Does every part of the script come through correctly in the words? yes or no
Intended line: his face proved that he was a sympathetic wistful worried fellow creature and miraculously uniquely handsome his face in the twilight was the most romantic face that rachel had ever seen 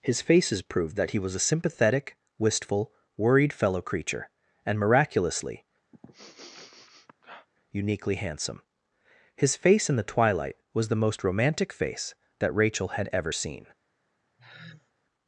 no